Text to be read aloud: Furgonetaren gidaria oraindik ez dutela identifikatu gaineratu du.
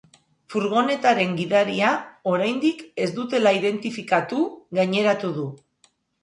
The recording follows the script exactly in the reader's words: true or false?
true